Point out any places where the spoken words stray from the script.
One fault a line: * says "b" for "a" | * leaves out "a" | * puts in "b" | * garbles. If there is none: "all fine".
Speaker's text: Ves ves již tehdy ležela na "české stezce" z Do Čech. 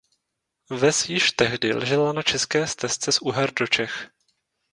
* leaves out "ves"
* puts in "Uher"